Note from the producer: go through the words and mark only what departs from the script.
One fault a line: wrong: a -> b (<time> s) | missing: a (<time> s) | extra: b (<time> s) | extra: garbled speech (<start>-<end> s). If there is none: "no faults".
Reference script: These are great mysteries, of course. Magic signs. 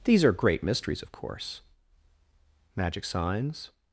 no faults